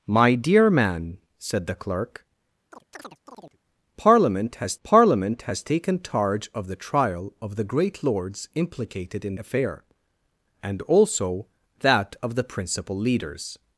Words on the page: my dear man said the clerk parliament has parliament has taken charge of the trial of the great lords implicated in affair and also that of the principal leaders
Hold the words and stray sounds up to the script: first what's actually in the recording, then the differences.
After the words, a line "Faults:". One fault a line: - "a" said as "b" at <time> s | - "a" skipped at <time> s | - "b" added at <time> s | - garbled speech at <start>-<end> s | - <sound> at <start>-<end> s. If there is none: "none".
my dear man said the clerk parliament has parliament has taken charge of the trial of the great lords implicated in affair and also that of the principal leaders
Faults:
- chirp at 2.7-3.6 s